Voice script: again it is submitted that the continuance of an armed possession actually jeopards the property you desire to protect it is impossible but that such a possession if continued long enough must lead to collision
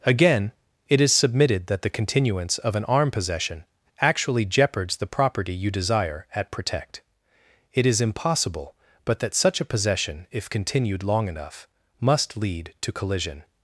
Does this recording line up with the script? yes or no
no